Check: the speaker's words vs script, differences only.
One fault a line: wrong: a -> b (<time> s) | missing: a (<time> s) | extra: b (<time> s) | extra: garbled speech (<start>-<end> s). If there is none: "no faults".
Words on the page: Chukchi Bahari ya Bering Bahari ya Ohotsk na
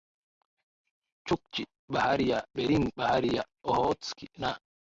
no faults